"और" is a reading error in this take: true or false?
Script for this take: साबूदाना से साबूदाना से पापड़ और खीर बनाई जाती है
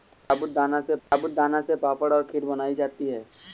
false